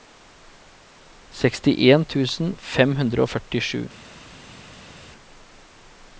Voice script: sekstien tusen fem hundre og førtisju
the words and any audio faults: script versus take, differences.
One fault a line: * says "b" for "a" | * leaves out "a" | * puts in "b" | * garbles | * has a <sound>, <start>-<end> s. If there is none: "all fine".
all fine